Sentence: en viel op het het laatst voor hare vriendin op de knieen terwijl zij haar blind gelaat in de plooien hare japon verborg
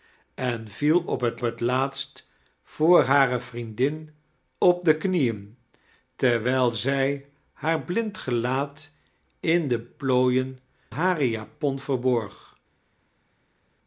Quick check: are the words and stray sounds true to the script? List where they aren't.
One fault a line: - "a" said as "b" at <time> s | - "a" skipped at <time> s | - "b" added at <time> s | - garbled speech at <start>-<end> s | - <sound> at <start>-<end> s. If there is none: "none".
none